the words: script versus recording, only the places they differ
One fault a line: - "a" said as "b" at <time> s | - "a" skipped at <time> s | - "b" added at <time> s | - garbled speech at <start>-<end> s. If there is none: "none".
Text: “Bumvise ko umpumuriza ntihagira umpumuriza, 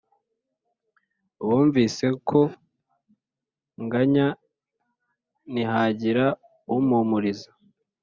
- "umpumuriza" said as "nganya" at 3.8 s